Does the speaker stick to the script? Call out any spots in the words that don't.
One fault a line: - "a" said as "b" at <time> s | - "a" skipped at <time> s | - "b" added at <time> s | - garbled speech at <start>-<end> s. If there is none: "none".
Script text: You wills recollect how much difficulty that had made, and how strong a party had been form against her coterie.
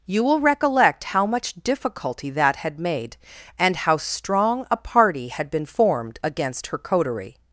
- "wills" said as "will" at 0.2 s
- "form" said as "formed" at 5.7 s